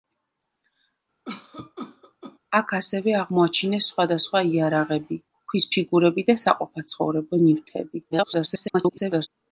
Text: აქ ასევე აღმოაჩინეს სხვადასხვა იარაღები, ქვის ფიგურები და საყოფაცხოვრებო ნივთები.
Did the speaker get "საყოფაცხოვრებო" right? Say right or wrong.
right